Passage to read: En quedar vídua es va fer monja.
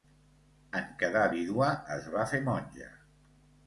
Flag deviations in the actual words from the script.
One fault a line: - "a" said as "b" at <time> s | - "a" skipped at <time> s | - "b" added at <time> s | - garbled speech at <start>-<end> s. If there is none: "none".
none